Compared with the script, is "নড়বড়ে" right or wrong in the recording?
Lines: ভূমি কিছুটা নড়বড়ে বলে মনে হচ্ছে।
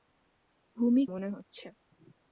wrong